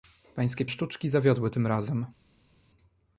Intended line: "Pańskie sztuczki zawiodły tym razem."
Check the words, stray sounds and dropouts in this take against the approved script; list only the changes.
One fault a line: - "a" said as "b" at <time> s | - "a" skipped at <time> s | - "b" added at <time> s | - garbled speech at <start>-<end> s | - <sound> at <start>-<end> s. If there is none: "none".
none